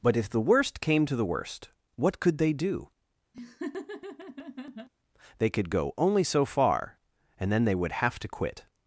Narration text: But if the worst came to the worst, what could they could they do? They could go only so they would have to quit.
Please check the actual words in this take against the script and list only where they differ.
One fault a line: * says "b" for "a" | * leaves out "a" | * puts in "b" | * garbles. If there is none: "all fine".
* leaves out "could they"
* puts in "far and then"